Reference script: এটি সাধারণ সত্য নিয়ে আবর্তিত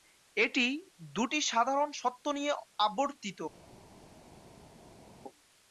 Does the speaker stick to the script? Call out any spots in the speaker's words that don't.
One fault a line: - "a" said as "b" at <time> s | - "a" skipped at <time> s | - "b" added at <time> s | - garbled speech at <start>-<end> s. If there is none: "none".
- "দুটি" added at 1.1 s